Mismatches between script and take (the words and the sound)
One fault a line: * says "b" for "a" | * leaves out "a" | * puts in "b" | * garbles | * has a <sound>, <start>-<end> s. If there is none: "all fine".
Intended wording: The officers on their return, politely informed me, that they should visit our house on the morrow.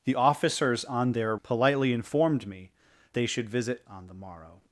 * leaves out "return"
* leaves out "that"
* leaves out "our house"